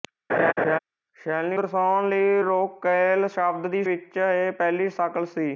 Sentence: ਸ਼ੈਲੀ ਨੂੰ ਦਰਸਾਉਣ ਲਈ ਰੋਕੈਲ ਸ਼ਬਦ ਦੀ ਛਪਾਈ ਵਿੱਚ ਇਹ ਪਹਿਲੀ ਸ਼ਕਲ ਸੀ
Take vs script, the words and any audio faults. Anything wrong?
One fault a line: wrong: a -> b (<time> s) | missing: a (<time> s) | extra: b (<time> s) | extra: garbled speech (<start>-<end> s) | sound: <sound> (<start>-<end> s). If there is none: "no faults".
sound: laugh (0.3-0.8 s)
missing: ਨੂੰ (1.6 s)
missing: ਛਪਾਈ (3.8 s)